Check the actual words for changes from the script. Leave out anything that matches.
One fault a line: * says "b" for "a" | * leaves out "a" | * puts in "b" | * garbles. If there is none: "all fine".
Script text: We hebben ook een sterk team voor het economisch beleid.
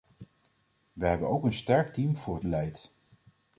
* leaves out "economisch"